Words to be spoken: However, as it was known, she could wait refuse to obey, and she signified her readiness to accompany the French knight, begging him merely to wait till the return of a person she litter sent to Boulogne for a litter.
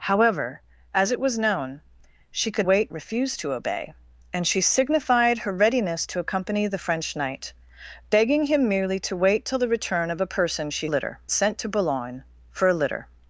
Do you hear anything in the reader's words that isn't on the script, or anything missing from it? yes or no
no